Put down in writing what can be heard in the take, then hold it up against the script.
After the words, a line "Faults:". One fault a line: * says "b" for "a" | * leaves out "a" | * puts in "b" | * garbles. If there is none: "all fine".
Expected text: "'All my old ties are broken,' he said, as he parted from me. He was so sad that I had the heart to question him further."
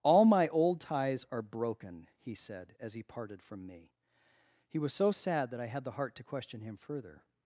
"'All my old ties are broken,' he said, as he parted from me. He was so sad that I had the heart to question him further."
Faults:
all fine